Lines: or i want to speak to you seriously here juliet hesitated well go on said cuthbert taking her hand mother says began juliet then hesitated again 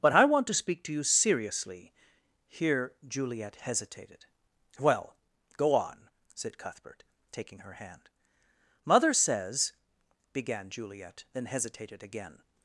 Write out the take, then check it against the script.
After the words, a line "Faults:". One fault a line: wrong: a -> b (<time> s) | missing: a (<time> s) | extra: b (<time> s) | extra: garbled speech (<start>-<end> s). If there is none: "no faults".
but i want to speak to you seriously here juliet hesitated well go on said cuthbert taking her hand mother says began juliet then hesitated again
Faults:
wrong: or -> but (0.0 s)